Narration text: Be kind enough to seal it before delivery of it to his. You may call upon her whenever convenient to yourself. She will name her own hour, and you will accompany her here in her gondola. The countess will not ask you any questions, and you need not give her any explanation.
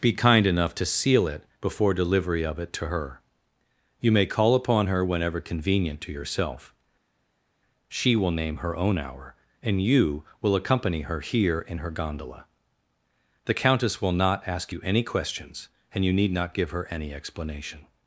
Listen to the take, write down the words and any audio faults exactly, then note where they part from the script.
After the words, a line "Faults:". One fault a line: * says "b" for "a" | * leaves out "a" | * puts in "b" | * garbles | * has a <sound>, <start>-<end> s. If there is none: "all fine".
Be kind enough to seal it before delivery of it to her. You may call upon her whenever convenient to yourself. She will name her own hour, and you will accompany her here in her gondola. The countess will not ask you any questions, and you need not give her any explanation.
Faults:
* says "her" for "his"